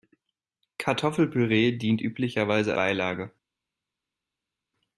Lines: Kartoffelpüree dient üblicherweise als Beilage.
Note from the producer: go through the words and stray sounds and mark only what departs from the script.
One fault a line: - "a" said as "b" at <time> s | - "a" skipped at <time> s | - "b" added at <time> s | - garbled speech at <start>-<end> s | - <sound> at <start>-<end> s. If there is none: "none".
- "als" skipped at 2.7 s